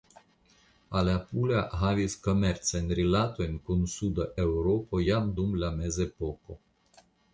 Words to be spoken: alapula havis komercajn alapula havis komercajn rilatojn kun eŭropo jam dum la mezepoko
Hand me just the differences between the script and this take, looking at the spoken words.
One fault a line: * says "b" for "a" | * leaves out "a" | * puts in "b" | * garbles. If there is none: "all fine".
* leaves out "alapula havis komercajn"
* puts in "suda"